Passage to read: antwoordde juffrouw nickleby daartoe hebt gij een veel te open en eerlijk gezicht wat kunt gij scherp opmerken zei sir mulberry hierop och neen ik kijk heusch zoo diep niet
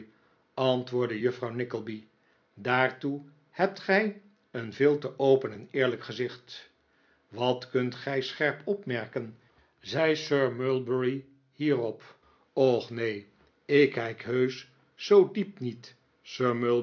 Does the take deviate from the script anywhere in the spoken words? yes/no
no